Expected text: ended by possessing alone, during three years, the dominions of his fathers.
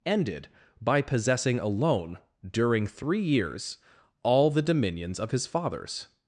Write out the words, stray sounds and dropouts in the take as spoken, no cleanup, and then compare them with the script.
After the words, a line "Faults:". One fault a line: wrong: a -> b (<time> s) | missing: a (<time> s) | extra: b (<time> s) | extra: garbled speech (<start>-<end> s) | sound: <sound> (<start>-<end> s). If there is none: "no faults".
ended by possessing alone, during three years, all the dominions of his fathers.
Faults:
extra: all (4.2 s)